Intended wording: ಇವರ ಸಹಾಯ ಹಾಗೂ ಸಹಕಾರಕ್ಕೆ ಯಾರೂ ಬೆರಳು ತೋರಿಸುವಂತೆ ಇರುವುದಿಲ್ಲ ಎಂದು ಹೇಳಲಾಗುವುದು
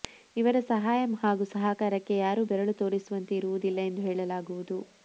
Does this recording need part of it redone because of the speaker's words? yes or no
no